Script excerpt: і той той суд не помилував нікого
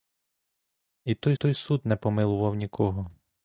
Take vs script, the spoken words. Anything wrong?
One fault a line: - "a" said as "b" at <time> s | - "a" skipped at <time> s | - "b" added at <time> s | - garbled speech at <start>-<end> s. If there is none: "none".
none